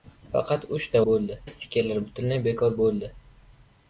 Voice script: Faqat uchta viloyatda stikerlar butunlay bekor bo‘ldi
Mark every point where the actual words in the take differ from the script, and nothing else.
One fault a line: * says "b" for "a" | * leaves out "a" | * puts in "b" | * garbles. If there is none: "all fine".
* says "bo‘ldi" for "viloyatda"